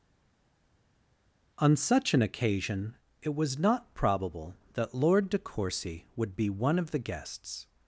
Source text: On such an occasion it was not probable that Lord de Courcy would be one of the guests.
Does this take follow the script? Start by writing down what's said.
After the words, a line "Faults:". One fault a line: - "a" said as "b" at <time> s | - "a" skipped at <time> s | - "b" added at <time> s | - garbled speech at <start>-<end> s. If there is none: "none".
On such an occasion it was not probable that Lord de Courcy would be one of the guests.
Faults:
none